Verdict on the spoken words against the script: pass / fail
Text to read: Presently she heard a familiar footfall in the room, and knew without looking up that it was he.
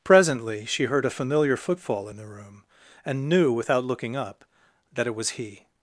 pass